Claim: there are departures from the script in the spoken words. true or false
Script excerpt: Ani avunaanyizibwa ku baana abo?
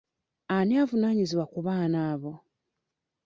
false